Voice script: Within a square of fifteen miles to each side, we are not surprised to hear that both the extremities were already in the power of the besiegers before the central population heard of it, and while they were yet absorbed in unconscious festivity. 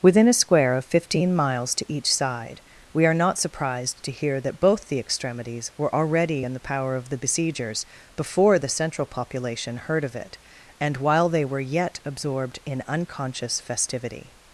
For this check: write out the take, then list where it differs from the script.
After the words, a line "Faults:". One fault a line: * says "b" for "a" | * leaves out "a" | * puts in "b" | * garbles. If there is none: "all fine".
Within a square of fifteen miles to each side, we are not surprised to hear that both the extremities were already in the power of the besiegers before the central population heard of it, and while they were yet absorbed in unconscious festivity.
Faults:
all fine